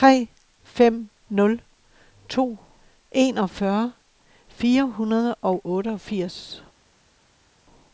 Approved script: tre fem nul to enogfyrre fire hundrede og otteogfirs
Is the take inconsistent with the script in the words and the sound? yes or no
no